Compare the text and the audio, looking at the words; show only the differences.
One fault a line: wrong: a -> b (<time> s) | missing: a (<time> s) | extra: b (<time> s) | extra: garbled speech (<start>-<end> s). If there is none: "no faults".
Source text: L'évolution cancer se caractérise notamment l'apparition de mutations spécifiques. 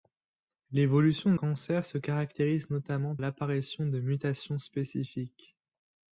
no faults